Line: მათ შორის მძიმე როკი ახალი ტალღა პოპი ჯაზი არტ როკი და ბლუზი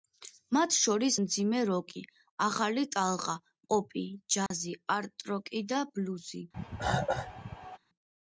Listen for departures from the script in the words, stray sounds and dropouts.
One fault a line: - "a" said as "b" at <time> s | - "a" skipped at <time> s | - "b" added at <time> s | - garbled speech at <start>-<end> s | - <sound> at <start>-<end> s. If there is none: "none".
- dropout at 4.5-4.5 s
- cough at 6.5-7.8 s